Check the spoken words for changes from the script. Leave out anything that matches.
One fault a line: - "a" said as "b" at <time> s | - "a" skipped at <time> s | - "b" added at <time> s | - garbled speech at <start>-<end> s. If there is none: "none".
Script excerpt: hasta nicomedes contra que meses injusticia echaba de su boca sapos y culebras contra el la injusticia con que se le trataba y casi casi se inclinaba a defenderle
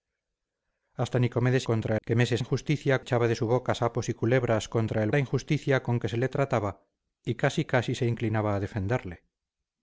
none